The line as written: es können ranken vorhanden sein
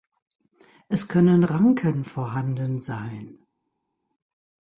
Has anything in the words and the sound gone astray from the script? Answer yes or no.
no